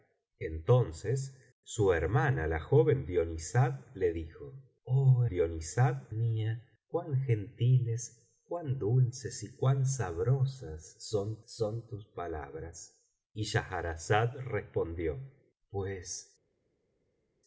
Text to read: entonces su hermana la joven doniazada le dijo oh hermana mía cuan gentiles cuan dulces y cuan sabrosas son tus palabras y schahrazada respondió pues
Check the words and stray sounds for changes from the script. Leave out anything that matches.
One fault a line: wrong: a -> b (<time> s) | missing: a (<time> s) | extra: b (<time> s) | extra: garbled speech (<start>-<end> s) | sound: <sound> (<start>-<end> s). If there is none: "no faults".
wrong: hermana -> doniazada (5.3 s)
extra: son (11.5 s)